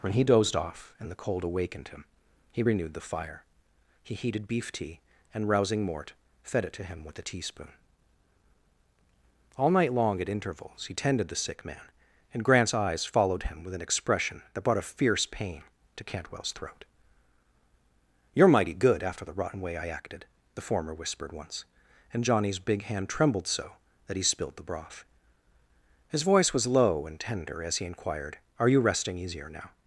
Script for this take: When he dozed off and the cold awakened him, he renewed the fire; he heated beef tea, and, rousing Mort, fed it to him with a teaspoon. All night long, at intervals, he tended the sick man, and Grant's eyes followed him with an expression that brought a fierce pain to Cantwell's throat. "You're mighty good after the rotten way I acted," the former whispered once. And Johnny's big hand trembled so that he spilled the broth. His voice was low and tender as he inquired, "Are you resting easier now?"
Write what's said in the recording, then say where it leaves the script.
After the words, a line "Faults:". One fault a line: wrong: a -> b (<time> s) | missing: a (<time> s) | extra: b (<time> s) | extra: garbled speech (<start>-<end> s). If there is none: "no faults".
When he dozed off and the cold awakened him, he renewed the fire; he heated beef tea, and, rousing Mort, fed it to him with a teaspoon. All night long, at intervals, he tended the sick man, and Grant's eyes followed him with an expression that brought a fierce pain to Cantwell's throat. "You're mighty good after the rotten way I acted," the former whispered once. And Johnny's big hand trembled so that he spilled the broth. His voice was low and tender as he inquired, "Are you resting easier now?"
Faults:
no faults